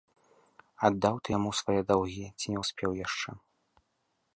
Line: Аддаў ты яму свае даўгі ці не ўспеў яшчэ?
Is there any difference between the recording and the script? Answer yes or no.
no